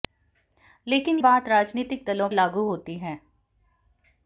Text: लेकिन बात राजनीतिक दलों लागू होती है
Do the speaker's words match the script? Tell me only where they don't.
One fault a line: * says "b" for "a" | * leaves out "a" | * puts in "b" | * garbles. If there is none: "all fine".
all fine